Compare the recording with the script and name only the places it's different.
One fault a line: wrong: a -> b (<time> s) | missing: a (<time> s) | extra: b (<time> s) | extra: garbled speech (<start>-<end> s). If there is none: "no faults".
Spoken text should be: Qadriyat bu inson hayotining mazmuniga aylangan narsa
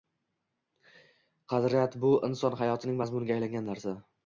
no faults